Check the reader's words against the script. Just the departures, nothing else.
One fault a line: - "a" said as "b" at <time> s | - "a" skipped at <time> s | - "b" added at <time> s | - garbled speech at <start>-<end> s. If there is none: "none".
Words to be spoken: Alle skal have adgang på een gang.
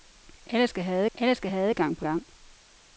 - "alle skal have" added at 1.1 s
- "een" skipped at 2.0 s